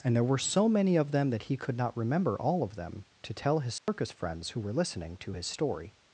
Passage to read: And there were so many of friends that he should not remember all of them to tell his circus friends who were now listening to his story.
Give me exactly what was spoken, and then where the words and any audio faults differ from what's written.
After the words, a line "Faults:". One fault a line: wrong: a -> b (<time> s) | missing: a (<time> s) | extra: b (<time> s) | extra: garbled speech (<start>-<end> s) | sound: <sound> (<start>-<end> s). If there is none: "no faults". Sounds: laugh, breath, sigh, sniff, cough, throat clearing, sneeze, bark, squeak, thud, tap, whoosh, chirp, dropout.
And there were so many of them that he could not remember all of them to tell his circus friends who were listening to his story.
Faults:
wrong: friends -> them (1.1 s)
wrong: should -> could (1.6 s)
sound: dropout (3.8-3.9 s)
missing: now (4.7 s)